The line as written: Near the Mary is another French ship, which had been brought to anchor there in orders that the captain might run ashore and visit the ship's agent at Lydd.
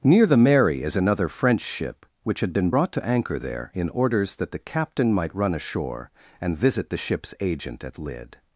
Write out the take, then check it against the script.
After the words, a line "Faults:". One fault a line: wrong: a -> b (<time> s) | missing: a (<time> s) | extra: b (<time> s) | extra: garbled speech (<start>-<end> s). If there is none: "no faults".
Near the Mary is another French ship, which had been brought to anchor there in orders that the captain might run ashore and visit the ship's agent at Lydd.
Faults:
no faults